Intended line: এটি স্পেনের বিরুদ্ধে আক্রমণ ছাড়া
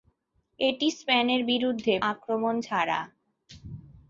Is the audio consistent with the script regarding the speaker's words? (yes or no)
yes